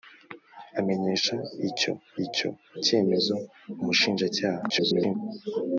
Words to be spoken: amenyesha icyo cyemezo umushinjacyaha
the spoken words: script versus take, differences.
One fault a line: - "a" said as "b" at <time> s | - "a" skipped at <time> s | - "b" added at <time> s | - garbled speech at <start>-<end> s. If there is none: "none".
- "icyo" added at 2.3 s
- garbled speech at 4.7-5.2 s